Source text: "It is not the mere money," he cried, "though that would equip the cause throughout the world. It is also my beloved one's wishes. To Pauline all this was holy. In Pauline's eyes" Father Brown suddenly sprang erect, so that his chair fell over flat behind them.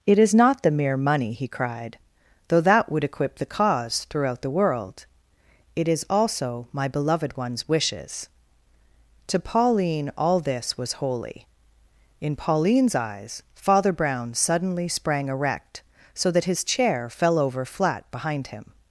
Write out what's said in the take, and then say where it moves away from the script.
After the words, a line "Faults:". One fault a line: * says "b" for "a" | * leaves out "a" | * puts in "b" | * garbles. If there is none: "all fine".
"It is not the mere money," he cried, "though that would equip the cause throughout the world. It is also my beloved one's wishes. To Pauline all this was holy. In Pauline's eyes" Father Brown suddenly sprang erect, so that his chair fell over flat behind him.
Faults:
* says "him" for "them"